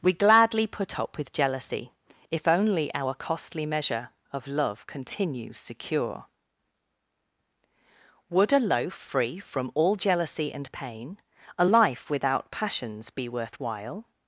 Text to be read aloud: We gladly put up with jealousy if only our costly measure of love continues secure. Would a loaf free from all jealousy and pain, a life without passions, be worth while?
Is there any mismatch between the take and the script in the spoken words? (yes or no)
no